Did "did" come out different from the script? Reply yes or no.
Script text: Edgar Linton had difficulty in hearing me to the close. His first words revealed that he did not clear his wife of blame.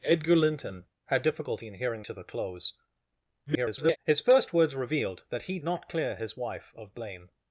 yes